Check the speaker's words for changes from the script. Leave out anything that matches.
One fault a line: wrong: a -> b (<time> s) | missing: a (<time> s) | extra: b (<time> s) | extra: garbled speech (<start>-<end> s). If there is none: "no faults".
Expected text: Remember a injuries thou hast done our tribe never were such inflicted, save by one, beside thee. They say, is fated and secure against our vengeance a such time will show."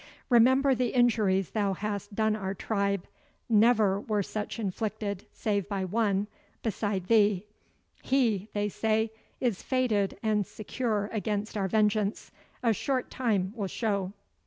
wrong: a -> the (0.7 s)
extra: HE (8.0 s)
wrong: such -> short (12.7 s)